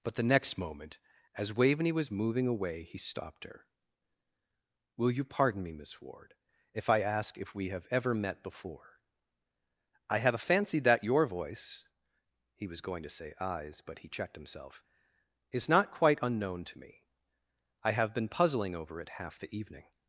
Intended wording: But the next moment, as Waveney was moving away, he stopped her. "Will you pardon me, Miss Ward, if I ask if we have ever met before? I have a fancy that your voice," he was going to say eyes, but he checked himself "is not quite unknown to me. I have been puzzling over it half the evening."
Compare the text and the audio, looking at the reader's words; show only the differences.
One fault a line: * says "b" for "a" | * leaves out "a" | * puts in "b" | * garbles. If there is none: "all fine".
all fine